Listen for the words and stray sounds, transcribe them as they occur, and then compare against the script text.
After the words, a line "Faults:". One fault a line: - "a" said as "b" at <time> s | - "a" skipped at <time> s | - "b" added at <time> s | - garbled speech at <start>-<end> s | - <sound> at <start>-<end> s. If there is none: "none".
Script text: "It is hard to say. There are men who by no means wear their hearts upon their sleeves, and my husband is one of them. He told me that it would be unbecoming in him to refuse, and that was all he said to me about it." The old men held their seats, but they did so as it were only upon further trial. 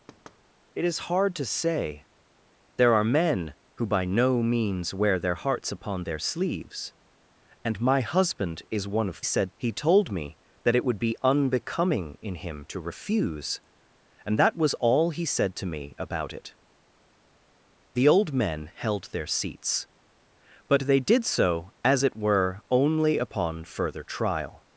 "It is hard to say. There are men who by no means wear their hearts upon their sleeves, and my husband is one of said. He told me that it would be unbecoming in him to refuse, and that was all he said to me about it." The old men held their seats, but they did so as it were only upon further trial.
Faults:
- thud at 0.1-0.4 s
- "them" said as "said" at 9.2 s